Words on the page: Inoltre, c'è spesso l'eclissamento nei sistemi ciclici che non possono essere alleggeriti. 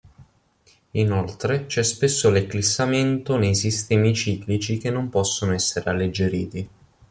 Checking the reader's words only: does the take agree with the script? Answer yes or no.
yes